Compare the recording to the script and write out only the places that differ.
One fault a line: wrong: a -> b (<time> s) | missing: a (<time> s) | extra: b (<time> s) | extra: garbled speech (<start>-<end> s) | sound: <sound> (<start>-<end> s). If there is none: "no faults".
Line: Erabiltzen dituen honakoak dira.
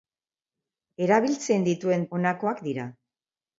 no faults